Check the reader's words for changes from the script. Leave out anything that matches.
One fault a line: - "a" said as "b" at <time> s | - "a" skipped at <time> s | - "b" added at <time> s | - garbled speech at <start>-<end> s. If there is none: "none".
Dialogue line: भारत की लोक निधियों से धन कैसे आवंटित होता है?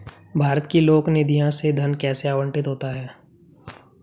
none